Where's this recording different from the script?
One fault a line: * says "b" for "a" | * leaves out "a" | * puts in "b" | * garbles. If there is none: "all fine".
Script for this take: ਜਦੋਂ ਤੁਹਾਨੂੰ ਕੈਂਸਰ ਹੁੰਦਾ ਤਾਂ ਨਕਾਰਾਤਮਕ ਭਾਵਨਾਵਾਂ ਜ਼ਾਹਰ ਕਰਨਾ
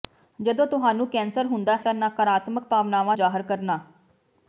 all fine